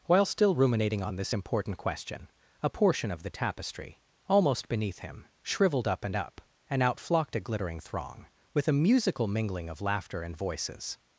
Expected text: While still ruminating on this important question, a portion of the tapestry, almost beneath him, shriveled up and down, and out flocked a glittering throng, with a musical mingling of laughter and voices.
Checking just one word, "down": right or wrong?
wrong